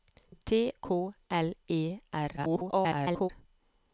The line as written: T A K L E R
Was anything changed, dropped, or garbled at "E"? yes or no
no